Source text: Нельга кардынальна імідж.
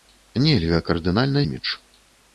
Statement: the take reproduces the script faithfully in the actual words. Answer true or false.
true